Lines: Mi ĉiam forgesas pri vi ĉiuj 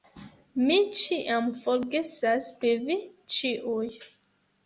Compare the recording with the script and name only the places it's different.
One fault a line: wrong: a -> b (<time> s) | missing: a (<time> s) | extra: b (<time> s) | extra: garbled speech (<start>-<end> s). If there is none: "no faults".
no faults